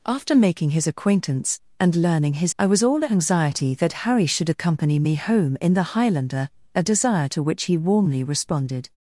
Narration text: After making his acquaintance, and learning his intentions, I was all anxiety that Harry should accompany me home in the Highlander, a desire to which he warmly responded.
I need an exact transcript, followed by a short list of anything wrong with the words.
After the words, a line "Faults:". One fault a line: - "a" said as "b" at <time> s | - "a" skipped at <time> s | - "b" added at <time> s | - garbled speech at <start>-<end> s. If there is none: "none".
After making his acquaintance, and learning his I was all anxiety that Harry should accompany me home in the Highlander, a desire to which he warmly responded.
Faults:
- "intentions" skipped at 2.5 s